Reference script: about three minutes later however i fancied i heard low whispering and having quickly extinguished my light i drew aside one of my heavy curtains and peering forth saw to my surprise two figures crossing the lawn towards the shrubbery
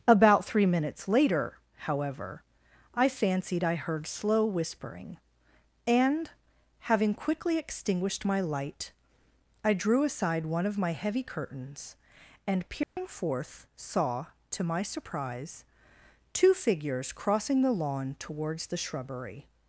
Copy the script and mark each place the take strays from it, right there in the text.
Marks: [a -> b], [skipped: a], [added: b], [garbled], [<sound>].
about three minutes later however i fancied i heard [low -> slow] whispering and having quickly extinguished my light i drew aside one of my heavy curtains and peering [dropout] forth saw to my surprise two figures crossing the lawn towards the shrubbery